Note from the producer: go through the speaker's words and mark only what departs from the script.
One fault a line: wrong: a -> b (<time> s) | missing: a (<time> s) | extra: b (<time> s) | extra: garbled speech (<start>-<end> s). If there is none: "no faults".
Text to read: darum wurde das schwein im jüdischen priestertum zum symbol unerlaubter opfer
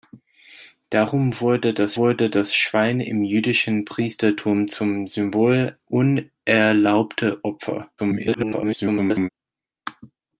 extra: wurde das (2.0 s)
extra: garbled speech (8.0-9.3 s)